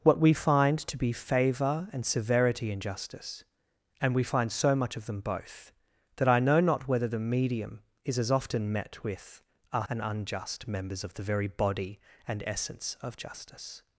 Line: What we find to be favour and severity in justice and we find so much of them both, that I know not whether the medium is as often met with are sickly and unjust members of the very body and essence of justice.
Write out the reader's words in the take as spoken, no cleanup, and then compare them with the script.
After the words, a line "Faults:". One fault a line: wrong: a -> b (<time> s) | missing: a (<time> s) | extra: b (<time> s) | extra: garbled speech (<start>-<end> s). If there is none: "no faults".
What we find to be favour and severity in justice and we find so much of them both, that I know not whether the medium is as often met with are and unjust members of the very body and essence of justice.
Faults:
missing: sickly (9.8 s)